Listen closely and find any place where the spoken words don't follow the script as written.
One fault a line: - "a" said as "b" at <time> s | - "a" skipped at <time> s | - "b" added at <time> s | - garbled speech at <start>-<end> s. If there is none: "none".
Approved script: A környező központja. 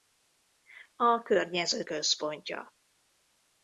none